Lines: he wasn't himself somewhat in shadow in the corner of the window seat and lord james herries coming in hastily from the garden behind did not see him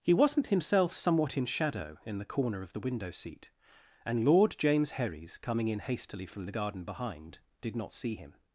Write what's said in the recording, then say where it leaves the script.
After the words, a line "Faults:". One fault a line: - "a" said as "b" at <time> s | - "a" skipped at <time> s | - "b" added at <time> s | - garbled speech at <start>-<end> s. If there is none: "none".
he wasn't himself somewhat in shadow in the corner of the window seat and lord james herries coming in hastily from the garden behind did not see him
Faults:
none